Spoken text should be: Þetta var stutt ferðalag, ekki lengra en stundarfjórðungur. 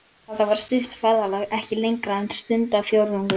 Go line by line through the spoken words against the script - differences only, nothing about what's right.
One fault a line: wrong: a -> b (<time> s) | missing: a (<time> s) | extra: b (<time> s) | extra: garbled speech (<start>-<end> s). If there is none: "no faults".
no faults